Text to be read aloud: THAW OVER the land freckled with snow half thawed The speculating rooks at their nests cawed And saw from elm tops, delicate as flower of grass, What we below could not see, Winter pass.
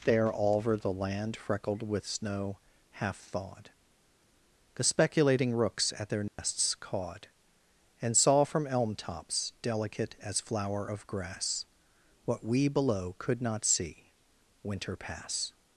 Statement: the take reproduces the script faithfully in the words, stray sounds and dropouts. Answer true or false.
false